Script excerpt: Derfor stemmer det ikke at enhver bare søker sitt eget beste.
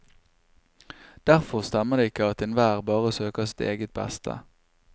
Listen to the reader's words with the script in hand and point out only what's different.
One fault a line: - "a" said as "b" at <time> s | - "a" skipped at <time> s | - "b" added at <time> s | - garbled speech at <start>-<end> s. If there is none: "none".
none